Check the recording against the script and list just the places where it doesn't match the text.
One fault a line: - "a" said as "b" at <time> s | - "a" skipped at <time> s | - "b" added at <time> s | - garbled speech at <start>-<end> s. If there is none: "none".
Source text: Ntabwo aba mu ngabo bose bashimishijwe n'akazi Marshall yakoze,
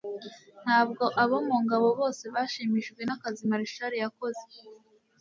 - "aba" said as "abo" at 1.2 s